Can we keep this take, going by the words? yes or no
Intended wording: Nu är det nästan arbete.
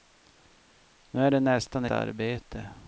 yes